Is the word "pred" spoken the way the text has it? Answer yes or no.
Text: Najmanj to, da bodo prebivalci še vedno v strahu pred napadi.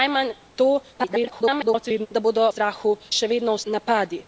no